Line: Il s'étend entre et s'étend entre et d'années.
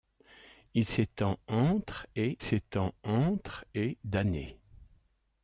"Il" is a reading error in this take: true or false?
false